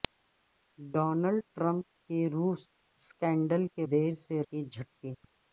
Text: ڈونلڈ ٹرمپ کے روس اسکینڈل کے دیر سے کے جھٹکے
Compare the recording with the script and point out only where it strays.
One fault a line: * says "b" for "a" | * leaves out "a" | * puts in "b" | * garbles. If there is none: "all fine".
all fine